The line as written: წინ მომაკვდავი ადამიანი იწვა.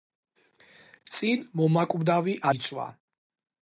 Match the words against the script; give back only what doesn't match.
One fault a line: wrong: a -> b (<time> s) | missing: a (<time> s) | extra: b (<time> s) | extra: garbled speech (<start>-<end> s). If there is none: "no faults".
missing: ადამიანი (2.4 s)